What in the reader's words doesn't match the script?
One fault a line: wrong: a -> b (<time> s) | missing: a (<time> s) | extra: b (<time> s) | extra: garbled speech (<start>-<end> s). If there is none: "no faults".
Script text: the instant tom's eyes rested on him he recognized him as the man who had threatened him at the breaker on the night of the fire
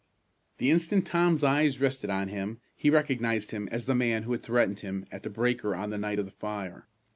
no faults